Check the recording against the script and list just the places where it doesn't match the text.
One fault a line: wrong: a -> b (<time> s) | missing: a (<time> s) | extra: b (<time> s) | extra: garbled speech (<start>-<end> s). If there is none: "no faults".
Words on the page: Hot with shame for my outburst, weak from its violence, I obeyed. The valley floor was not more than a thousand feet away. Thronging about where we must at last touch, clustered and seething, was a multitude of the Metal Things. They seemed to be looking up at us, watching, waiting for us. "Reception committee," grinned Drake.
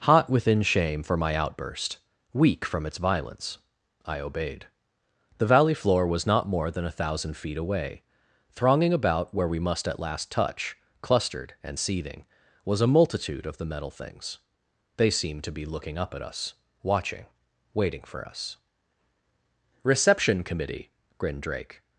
wrong: with -> within (0.3 s)